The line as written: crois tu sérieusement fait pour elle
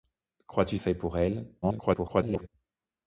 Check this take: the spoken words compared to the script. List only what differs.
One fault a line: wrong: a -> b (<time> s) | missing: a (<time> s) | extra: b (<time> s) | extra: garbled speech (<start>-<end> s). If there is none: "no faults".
missing: sérieusement (0.8 s)
extra: garbled speech (1.6-2.5 s)